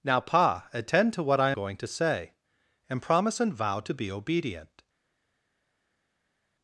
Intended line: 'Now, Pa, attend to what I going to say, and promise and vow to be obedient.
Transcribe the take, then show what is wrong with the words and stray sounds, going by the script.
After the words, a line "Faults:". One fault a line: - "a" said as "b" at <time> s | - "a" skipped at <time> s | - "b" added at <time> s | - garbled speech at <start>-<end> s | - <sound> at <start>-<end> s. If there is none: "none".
'Now, Pa, attend to what I going to say, and promise and vow to be obedient.
Faults:
none